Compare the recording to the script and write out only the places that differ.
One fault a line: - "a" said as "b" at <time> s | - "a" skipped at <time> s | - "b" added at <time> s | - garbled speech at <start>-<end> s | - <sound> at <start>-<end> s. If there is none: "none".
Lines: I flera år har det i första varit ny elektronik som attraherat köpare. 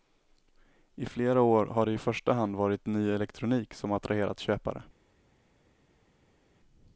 - "hand" added at 2.3 s